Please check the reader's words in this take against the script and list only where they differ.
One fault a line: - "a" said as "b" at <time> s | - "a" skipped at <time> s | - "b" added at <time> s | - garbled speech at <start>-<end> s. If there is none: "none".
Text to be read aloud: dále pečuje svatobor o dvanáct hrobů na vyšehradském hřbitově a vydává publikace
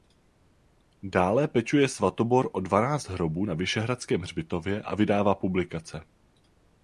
none